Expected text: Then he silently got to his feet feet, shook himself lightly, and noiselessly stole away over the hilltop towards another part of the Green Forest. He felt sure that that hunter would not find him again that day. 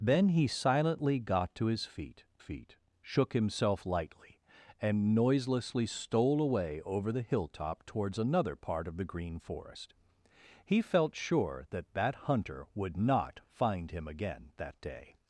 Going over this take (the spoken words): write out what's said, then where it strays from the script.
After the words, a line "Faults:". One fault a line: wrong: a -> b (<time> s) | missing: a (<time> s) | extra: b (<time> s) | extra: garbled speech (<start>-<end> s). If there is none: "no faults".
Then he silently got to his feet feet, shook himself lightly, and noiselessly stole away over the hilltop towards another part of the Green Forest. He felt sure that that hunter would not find him again that day.
Faults:
no faults